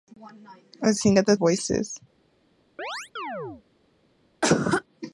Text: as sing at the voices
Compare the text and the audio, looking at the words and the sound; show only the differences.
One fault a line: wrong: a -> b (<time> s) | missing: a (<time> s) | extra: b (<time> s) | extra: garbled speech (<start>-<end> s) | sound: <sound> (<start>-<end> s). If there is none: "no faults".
sound: chirp (2.8-3.6 s)
sound: cough (4.4-4.8 s)